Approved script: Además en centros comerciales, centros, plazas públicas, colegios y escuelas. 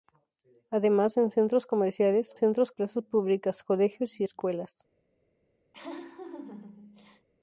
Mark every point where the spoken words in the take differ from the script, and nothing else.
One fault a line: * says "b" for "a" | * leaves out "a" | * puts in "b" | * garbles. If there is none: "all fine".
all fine